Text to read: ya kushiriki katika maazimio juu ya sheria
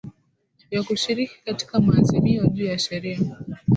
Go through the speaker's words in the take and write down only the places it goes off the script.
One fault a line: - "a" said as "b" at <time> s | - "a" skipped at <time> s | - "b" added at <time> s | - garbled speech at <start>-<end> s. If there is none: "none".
none